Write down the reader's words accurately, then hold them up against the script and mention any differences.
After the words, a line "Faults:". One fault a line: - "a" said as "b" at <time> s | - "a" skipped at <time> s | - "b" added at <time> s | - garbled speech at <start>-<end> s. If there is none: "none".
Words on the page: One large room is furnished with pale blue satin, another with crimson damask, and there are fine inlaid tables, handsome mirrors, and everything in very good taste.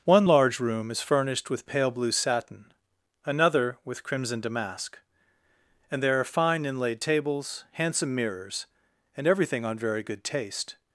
One large room is furnished with pale blue satin, another with crimson damask, and there are fine inlaid tables, handsome mirrors, and everything on very good taste.
Faults:
- "in" said as "on" at 9.6 s